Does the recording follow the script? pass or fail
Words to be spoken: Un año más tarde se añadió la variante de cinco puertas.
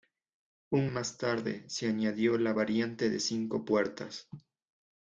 fail